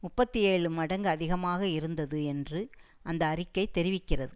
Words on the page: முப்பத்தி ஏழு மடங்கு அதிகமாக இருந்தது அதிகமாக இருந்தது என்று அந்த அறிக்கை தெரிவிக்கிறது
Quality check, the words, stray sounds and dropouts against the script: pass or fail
fail